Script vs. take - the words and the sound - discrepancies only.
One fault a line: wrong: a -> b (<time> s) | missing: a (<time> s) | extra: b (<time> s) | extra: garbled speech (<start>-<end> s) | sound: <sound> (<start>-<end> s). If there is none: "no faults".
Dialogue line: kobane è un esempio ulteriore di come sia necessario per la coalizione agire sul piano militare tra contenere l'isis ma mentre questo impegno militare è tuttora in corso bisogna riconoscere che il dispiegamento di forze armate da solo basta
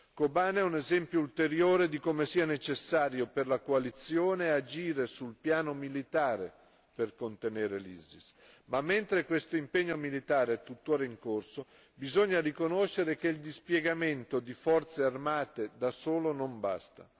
wrong: tra -> per (6.9 s)
extra: non (16.3 s)